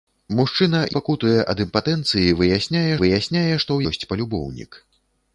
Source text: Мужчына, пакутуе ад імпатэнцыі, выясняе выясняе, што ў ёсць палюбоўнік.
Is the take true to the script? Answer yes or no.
yes